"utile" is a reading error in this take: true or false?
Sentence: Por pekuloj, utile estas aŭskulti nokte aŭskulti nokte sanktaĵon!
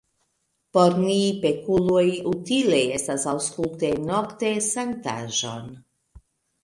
false